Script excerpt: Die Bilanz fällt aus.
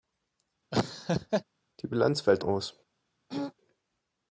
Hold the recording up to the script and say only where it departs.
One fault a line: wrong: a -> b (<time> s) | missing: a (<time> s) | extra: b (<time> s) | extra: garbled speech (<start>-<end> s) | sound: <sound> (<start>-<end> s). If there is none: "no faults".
sound: laugh (0.7-1.4 s)
sound: throat clearing (3.3-3.5 s)